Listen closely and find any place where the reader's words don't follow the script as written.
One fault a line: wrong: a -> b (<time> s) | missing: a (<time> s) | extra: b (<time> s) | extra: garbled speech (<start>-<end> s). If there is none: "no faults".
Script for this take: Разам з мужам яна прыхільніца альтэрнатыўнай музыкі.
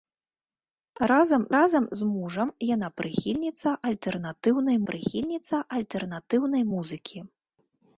extra: разам (1.5 s)
extra: прыхільніца альтэрнатыўнай (4.9 s)